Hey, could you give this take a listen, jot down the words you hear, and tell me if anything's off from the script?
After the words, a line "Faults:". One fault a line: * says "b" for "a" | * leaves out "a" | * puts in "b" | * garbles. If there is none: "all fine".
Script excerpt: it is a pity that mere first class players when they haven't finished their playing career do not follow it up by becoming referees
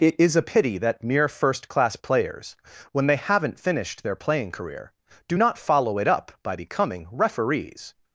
it is a pity that mere first class players when they haven't finished their playing career do not follow it up by becoming referees
Faults:
all fine